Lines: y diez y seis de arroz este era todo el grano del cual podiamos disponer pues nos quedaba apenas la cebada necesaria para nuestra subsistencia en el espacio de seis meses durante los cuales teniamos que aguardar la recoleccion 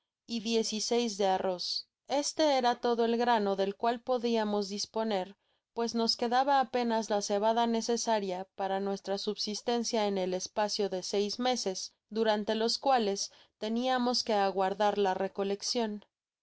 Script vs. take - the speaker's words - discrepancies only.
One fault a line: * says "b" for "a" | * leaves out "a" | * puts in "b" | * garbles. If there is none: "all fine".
all fine